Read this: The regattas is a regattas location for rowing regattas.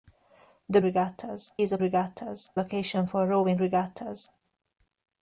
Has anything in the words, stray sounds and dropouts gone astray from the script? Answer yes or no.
no